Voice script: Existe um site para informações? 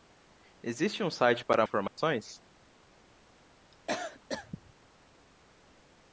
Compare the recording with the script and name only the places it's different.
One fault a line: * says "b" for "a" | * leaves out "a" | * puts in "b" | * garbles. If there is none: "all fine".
all fine